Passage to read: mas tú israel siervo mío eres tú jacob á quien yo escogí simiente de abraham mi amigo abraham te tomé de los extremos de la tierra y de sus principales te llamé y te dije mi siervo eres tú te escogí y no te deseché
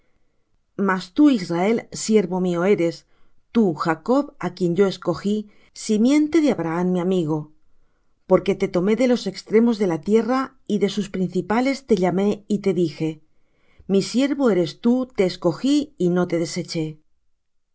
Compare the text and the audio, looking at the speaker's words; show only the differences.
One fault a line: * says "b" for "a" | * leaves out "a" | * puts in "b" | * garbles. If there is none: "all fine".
* says "porque" for "abraham"